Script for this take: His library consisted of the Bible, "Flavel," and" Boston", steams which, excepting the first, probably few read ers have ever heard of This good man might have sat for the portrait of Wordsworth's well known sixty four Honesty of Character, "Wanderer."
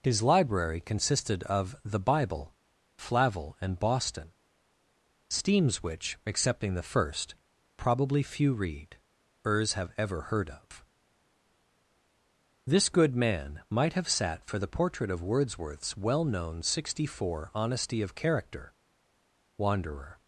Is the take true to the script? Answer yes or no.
yes